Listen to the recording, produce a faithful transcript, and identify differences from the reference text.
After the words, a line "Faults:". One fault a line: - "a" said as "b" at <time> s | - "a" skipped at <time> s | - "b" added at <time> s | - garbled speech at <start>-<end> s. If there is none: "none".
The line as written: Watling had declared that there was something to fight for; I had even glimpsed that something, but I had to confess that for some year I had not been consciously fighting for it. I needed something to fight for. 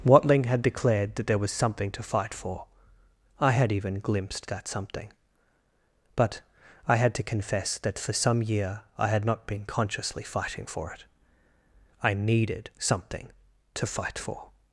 Watling had declared that there was something to fight for; I had even glimpsed that something, but I had to confess that for some year I had not been consciously fighting for it. I needed something to fight for.
Faults:
none